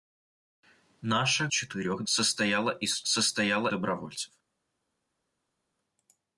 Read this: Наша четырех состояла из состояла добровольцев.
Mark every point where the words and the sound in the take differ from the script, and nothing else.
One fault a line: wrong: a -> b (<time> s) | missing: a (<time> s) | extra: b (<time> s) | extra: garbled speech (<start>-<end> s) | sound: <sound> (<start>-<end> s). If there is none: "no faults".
no faults